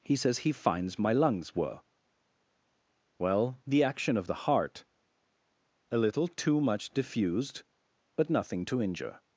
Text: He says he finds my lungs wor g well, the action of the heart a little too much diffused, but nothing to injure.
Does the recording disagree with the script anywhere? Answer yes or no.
yes